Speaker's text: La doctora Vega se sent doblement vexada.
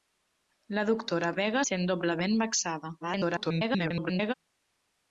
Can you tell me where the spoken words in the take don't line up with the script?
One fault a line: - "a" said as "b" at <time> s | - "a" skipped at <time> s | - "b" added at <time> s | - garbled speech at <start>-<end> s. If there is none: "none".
- "se" skipped at 1.6 s
- garbled speech at 3.0-4.3 s